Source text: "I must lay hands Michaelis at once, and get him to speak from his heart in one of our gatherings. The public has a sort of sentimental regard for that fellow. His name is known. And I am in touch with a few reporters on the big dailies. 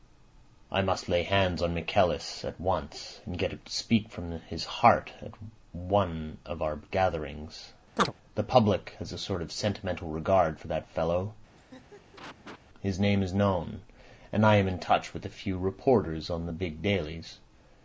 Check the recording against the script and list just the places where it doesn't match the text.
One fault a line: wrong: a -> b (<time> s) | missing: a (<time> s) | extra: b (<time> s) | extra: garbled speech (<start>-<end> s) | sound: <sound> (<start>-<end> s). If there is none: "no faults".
extra: on (1.6 s)
wrong: in -> at (5.2 s)
sound: chirp (8.0-8.1 s)
sound: laugh (11.5-12.6 s)